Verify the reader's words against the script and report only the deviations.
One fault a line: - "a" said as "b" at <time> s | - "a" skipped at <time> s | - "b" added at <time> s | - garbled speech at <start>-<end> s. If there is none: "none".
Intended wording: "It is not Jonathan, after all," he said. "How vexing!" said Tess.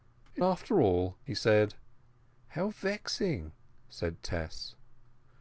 - "is not Jonathan" skipped at 0.4 s